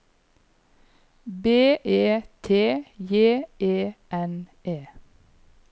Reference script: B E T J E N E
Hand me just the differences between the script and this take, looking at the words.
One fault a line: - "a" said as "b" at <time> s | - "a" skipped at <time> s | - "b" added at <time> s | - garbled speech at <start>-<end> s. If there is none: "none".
none